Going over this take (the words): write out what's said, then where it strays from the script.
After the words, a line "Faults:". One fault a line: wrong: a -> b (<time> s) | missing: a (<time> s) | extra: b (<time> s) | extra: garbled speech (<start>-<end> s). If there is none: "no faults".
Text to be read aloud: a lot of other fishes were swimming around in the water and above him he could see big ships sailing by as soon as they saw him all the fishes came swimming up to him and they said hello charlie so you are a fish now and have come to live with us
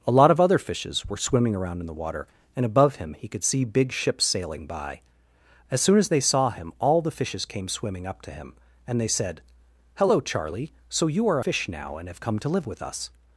a lot of other fishes were swimming around in the water and above him he could see big ships sailing by as soon as they saw him all the fishes came swimming up to him and they said hello charlie so you are fish now and have come to live with us
Faults:
missing: a (11.4 s)